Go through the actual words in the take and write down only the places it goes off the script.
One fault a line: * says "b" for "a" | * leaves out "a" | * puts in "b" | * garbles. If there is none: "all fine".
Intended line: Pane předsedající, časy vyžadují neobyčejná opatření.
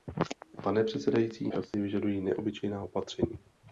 all fine